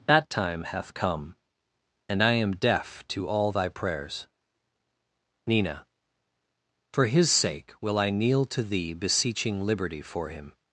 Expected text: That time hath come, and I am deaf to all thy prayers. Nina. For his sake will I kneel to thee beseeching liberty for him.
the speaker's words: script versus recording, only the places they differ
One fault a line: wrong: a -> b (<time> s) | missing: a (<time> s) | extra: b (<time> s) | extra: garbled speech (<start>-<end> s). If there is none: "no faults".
no faults